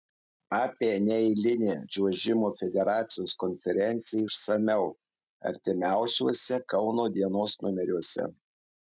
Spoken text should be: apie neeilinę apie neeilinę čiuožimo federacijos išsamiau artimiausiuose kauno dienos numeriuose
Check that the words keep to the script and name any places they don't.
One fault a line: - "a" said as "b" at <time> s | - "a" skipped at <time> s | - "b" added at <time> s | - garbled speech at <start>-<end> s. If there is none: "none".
- "apie neeilinę" skipped at 1.7 s
- "konferenciją" added at 3.4 s